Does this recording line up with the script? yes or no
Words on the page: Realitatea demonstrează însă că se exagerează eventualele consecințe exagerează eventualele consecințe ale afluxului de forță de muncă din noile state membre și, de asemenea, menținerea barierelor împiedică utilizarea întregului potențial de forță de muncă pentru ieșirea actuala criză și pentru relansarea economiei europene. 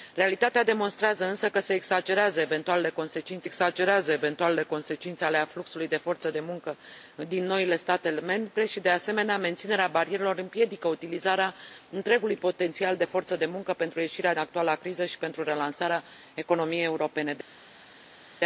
yes